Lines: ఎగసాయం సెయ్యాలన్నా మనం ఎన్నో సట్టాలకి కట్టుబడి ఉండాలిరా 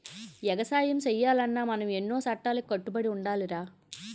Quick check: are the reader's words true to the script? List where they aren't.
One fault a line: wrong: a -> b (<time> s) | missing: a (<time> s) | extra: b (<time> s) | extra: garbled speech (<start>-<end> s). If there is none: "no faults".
no faults